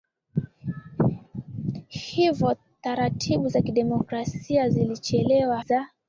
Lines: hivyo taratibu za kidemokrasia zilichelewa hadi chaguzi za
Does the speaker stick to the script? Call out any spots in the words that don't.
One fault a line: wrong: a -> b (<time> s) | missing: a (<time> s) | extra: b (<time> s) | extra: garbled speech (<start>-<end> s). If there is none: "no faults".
missing: hadi chaguzi (5.6 s)